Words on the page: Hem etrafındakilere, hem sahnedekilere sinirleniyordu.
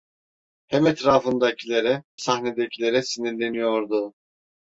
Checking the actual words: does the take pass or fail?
fail